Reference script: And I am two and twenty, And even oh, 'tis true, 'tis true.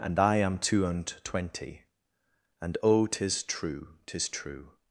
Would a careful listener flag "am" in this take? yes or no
no